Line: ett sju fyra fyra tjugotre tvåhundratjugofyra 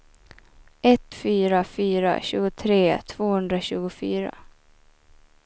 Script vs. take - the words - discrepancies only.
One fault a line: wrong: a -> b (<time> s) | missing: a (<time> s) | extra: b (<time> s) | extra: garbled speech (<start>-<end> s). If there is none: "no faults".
missing: sju (1.1 s)